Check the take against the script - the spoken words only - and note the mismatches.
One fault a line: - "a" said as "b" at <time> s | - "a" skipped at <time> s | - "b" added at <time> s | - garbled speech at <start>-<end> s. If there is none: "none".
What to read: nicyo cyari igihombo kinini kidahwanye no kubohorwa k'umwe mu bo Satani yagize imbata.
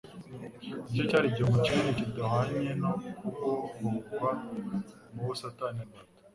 - "k'umwe" skipped at 4.3 s
- "yagize" skipped at 5.8 s